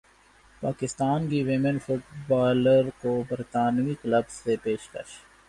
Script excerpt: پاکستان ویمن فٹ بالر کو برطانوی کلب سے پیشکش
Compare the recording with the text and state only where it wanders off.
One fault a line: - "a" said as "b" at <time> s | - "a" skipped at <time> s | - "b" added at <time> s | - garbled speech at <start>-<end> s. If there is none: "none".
- "کی" added at 1.3 s